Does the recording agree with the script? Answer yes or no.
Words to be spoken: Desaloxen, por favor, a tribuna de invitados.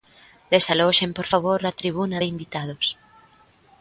yes